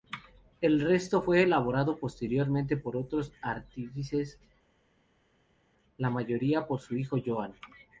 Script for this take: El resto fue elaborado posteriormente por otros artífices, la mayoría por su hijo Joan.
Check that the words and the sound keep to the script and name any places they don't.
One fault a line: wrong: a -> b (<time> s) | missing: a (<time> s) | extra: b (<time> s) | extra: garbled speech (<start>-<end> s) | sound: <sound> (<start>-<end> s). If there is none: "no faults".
no faults